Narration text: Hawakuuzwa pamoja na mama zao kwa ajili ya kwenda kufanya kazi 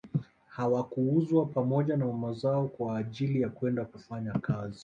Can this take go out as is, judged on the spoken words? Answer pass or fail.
pass